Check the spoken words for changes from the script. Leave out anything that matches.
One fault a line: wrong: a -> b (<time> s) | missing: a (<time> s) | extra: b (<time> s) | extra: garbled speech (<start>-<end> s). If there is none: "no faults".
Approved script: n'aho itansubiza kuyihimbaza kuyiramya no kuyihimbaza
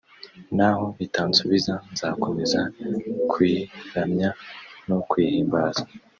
wrong: kuyihimbaza -> nzakomeza (1.9 s)